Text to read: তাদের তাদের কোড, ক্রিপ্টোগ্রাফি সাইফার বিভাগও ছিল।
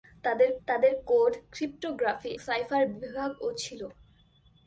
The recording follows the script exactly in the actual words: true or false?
true